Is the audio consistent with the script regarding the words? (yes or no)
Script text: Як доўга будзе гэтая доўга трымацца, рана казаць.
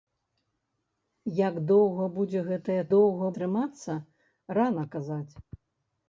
yes